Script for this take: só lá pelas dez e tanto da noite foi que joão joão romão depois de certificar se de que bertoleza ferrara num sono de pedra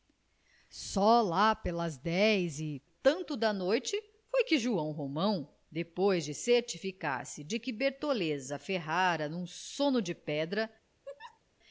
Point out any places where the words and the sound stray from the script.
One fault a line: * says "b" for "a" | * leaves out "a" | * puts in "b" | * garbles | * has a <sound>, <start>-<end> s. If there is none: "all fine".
* leaves out "joão"
* has a laugh, 11.0-11.4 s